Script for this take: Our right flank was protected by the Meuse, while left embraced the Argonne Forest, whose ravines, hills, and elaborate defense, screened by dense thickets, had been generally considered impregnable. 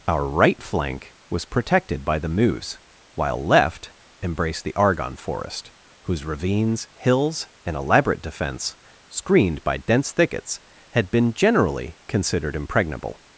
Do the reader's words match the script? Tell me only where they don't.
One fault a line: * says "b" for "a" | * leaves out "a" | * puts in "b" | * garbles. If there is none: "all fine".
all fine